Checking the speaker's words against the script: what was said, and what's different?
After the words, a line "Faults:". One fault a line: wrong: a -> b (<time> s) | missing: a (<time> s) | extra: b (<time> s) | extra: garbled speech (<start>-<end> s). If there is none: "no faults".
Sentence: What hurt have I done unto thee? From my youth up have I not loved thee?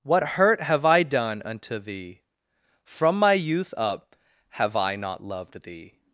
What hurt have I done unto thee? From my youth up have I not loved thee?
Faults:
no faults